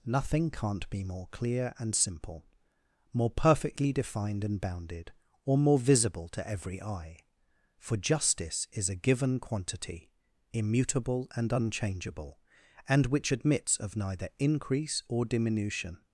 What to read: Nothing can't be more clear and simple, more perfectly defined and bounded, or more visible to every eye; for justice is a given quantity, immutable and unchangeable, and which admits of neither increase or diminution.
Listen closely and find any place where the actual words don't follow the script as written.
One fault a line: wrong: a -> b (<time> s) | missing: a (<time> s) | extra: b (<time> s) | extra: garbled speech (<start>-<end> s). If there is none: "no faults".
no faults